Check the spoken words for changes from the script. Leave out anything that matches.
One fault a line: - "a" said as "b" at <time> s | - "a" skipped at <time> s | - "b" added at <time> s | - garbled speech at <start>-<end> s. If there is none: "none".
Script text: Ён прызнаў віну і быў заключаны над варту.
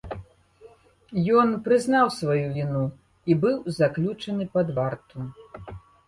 - "сваю" added at 2.2 s
- "над" said as "пад" at 4.6 s